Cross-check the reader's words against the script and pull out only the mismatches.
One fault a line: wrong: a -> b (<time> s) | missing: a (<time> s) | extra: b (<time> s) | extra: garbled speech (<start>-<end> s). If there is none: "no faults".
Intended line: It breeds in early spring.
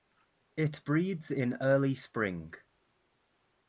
no faults